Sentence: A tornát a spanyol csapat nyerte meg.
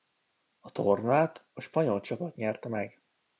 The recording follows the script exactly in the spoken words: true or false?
true